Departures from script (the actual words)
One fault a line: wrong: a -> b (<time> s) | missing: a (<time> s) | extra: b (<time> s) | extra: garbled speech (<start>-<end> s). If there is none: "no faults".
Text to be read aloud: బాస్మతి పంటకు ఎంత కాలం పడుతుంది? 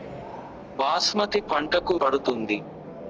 missing: ఎంత కాలం (1.9 s)